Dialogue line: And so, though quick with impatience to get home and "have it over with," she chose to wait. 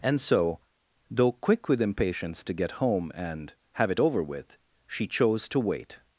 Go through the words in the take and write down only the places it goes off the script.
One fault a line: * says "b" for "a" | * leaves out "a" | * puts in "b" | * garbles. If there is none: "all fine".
all fine